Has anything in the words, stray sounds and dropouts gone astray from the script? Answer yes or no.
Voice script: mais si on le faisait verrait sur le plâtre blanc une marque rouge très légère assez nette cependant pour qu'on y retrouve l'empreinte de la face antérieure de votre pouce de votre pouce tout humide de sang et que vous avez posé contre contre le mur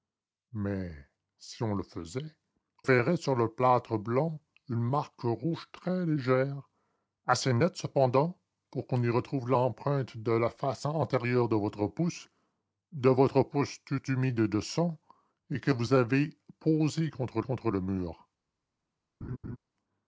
yes